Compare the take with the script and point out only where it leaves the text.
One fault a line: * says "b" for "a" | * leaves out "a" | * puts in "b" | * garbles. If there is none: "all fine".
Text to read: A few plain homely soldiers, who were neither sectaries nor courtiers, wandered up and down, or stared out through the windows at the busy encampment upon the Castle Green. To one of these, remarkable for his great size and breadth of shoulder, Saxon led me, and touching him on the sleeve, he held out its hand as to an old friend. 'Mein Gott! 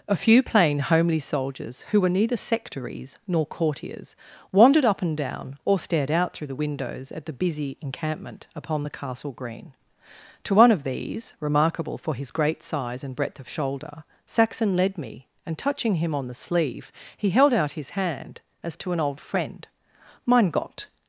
* says "his" for "its"